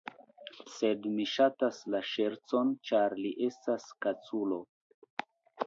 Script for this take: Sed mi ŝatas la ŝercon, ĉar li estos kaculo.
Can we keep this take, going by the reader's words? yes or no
no